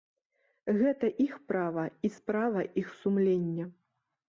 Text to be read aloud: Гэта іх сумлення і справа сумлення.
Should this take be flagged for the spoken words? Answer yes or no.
yes